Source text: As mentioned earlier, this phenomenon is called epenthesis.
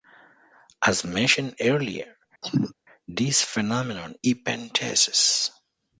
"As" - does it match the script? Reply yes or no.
yes